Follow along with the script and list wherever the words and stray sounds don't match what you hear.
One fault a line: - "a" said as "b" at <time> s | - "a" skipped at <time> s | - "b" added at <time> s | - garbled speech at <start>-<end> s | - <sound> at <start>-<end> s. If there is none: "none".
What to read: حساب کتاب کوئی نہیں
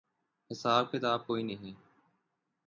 none